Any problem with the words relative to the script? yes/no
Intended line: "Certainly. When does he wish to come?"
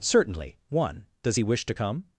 yes